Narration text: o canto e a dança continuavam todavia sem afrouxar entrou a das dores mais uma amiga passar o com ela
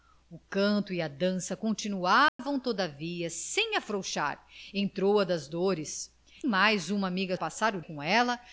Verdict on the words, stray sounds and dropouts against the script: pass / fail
fail